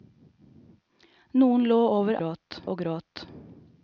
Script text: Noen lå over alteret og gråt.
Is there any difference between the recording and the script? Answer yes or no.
yes